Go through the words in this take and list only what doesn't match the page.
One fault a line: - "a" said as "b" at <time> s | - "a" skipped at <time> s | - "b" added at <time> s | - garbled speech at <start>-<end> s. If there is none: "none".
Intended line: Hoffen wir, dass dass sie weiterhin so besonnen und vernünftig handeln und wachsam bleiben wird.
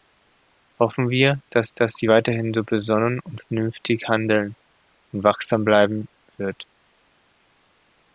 none